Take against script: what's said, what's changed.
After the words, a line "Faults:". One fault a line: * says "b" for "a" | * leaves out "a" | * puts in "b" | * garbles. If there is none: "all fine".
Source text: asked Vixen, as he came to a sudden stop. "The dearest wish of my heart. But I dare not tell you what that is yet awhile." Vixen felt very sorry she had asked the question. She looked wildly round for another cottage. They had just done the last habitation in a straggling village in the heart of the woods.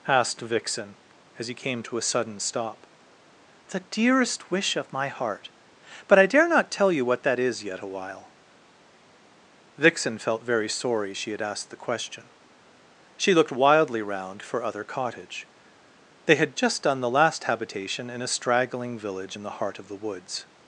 asked Vixen, as he came to a sudden stop. "The dearest wish of my heart. But I dare not tell you what that is yet awhile." Vixen felt very sorry she had asked the question. She looked wildly round for other cottage. They had just done the last habitation in a straggling village in the heart of the woods.
Faults:
* says "other" for "another"